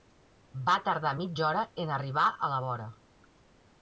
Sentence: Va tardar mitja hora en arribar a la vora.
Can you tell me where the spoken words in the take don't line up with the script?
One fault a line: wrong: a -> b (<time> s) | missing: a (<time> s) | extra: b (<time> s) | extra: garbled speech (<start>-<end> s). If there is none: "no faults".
no faults